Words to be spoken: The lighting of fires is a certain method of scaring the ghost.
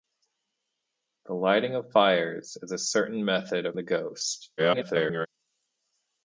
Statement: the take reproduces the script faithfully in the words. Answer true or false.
false